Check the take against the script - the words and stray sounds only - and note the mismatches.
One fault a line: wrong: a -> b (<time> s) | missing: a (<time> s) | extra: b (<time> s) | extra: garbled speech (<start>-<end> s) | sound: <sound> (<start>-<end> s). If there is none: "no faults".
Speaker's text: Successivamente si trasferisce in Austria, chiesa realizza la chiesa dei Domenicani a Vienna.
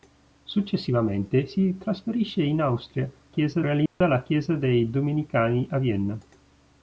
sound: dropout (3.9-4.0 s)